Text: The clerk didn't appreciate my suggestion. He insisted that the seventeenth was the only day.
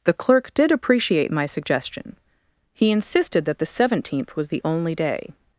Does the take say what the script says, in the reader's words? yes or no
no